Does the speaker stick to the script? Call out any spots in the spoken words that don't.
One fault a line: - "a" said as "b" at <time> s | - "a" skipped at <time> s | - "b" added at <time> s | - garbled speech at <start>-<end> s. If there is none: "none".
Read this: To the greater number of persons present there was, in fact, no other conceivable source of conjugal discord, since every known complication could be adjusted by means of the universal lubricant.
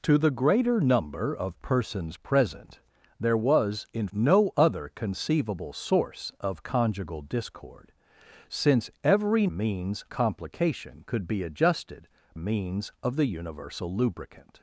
- "fact" skipped at 4.1 s
- "known" said as "means" at 9.5 s
- "by" skipped at 12.1 s